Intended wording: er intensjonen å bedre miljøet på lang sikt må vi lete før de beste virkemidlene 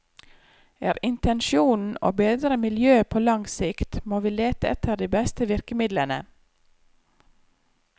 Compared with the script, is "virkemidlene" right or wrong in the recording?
right